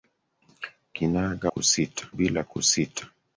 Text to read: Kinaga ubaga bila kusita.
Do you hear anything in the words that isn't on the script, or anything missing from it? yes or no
yes